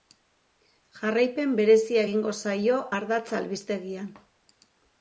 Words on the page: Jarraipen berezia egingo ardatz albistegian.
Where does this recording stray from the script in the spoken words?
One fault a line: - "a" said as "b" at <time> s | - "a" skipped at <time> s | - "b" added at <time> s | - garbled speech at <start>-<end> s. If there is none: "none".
- "zaio" added at 2.5 s